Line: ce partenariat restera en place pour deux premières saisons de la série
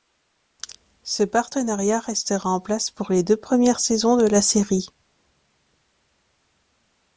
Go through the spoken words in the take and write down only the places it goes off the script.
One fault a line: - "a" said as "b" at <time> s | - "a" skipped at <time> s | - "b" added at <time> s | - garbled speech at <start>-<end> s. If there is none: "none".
- "les" added at 3.1 s